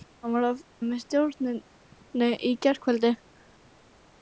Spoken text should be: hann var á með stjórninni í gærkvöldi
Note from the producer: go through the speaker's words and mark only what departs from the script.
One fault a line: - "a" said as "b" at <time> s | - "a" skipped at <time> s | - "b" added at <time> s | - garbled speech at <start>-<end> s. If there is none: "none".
none